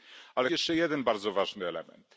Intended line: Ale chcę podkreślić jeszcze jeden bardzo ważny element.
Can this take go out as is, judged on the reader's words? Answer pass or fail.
fail